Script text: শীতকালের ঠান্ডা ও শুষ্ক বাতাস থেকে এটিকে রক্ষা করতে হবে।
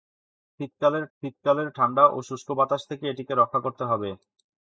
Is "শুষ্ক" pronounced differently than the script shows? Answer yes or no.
no